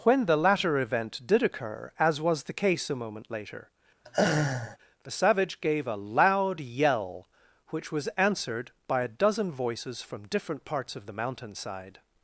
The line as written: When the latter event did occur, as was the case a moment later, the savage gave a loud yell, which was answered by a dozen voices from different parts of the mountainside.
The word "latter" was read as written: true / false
true